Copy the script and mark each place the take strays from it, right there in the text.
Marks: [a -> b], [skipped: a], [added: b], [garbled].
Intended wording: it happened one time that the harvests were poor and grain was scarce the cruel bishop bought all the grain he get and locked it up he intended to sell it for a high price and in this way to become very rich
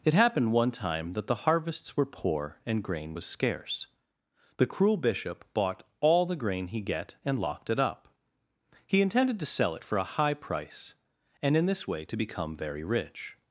it happened one time that the harvests were poor and grain was scarce the cruel bishop bought all the grain he get and locked it up he intended to sell it for a high price and in this way to become very rich